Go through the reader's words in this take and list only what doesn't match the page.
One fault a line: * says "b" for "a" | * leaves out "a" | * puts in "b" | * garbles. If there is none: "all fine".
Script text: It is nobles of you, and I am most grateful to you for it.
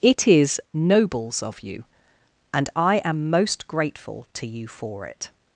all fine